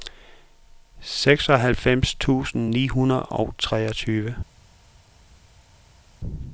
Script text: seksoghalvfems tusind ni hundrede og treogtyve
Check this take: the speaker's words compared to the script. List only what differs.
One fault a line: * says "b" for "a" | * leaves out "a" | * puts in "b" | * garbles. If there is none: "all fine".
all fine